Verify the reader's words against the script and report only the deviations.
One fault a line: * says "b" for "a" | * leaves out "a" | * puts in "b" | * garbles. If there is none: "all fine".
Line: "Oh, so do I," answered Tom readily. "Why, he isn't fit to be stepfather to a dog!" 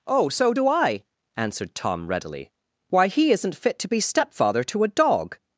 all fine